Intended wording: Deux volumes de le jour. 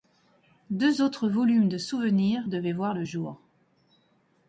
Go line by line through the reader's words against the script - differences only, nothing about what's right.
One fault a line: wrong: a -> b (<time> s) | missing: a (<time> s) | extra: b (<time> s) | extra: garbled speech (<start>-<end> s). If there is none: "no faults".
extra: autres (1.0 s)
extra: souvenirs devaient voir (1.8 s)